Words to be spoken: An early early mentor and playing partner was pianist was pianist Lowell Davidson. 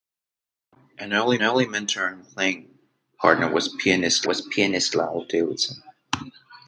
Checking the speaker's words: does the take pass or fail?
pass